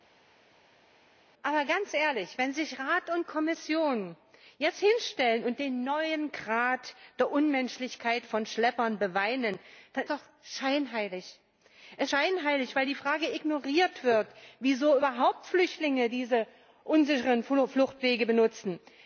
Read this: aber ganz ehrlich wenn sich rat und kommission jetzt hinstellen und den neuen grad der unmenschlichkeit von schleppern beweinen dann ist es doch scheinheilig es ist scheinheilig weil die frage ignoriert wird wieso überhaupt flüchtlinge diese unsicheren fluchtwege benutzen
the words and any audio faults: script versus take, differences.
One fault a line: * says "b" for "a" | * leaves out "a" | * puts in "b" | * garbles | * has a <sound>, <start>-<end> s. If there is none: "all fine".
* leaves out "ist es"
* leaves out "ist"